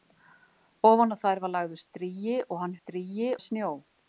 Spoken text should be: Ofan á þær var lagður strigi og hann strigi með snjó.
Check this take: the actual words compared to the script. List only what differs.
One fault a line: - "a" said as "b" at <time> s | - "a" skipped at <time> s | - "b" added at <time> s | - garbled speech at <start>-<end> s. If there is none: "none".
none